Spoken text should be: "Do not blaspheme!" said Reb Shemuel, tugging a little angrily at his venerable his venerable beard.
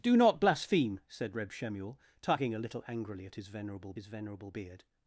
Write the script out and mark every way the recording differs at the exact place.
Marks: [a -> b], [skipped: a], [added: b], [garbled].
"Do not blaspheme!" said Reb Shemuel, tugging a little angrily at his venerable his venerable beard.